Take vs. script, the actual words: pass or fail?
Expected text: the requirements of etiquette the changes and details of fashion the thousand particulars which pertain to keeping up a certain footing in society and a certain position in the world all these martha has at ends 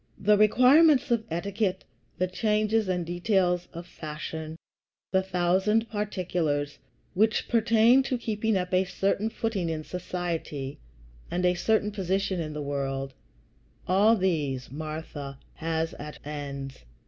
pass